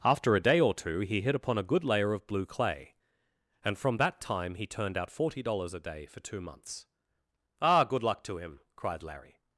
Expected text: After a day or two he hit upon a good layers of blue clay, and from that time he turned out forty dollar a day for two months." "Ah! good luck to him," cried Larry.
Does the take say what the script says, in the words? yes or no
no